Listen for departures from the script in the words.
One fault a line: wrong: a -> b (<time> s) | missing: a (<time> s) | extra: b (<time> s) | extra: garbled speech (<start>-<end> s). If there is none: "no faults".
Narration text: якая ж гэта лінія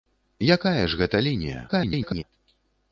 extra: garbled speech (1.7-2.2 s)